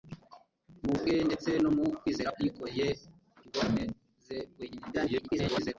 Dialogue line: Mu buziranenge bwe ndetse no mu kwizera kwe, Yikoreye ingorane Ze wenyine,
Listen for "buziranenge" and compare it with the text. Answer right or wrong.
wrong